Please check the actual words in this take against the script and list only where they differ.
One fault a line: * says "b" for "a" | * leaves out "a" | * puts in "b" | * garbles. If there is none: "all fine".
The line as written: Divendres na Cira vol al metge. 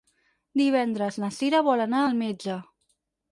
* puts in "anar"